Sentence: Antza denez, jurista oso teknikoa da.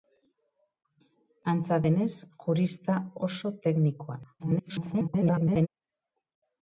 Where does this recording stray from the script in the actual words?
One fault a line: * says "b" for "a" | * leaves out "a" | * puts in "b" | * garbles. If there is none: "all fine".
* garbles